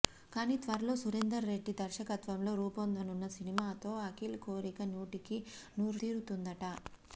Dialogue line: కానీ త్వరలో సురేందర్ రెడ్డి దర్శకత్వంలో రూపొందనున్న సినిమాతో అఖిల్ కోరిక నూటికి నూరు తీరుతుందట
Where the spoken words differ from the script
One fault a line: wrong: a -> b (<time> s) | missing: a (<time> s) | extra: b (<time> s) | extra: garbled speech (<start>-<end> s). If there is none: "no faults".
no faults